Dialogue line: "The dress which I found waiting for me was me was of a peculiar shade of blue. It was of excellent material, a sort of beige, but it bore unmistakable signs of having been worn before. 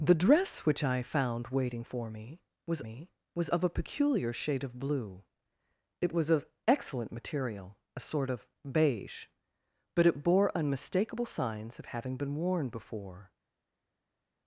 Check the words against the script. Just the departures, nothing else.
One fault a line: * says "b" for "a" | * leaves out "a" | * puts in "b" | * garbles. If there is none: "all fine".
all fine